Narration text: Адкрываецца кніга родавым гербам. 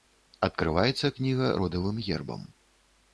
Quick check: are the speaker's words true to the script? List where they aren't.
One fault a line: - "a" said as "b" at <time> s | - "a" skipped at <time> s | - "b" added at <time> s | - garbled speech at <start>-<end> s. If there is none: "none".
none